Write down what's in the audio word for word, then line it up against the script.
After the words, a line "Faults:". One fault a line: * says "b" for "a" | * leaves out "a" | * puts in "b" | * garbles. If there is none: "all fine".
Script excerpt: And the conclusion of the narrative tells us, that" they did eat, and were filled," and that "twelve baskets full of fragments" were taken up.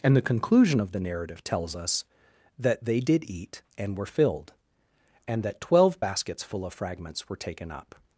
And the conclusion of the narrative tells us, that" they did eat, and were filled," and that "twelve baskets full of fragments" were taken up.
Faults:
all fine